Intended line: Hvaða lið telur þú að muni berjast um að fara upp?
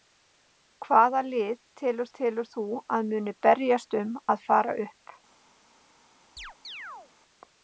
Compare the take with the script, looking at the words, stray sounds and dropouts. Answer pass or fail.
fail